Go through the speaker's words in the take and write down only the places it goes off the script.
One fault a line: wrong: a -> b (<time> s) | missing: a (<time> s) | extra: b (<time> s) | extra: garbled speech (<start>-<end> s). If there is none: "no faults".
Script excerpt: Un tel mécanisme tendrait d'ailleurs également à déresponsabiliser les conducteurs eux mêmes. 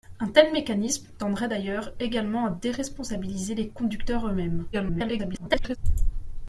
extra: garbled speech (4.7-5.8 s)